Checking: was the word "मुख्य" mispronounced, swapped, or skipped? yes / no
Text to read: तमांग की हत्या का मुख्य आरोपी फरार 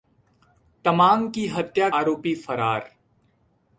yes